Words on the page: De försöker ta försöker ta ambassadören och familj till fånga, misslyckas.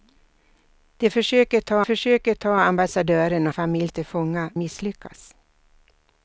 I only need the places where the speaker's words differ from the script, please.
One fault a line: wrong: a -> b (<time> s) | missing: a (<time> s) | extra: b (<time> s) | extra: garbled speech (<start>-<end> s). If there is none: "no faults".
no faults